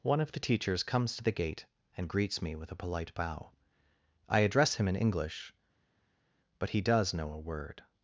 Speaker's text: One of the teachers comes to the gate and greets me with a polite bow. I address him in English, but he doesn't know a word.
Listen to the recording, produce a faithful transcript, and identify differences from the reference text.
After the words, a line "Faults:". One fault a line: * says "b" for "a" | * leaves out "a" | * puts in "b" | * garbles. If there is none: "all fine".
One of the teachers comes to the gate and greets me with a polite bow. I address him in English, but he does know a word.
Faults:
* says "does" for "doesn't"